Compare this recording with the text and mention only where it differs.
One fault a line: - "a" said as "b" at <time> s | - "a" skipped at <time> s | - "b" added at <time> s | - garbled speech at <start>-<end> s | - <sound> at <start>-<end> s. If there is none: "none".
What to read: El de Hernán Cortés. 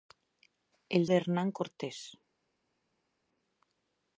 none